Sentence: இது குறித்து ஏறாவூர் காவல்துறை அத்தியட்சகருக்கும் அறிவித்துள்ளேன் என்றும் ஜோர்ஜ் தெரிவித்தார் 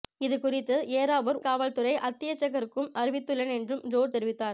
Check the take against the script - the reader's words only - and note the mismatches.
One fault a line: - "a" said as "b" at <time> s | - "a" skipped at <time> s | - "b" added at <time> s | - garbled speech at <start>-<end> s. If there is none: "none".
none